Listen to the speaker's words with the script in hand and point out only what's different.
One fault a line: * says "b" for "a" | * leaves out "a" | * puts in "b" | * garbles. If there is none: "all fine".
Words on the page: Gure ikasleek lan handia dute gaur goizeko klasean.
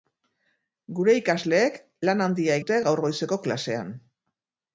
all fine